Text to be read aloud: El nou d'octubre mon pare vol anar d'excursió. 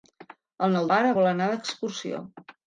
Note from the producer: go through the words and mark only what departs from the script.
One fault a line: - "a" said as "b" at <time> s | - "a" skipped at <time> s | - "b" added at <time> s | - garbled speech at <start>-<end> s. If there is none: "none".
- "d'octubre mon" skipped at 0.9 s